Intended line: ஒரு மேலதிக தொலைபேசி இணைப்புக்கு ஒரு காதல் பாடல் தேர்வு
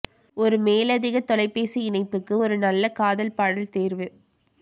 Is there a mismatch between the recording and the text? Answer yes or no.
yes